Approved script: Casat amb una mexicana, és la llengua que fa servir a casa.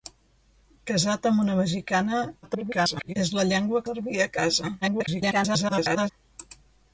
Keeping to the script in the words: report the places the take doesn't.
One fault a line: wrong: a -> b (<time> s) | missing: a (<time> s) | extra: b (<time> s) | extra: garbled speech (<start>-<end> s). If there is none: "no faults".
extra: garbled speech (2.4-3.1 s)
missing: que fa (3.8 s)
extra: garbled speech (4.8-6.1 s)